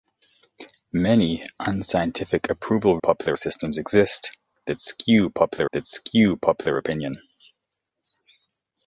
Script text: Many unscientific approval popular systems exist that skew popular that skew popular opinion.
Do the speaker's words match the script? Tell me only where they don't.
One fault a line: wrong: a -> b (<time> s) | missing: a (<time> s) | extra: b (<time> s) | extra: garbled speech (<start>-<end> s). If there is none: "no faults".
no faults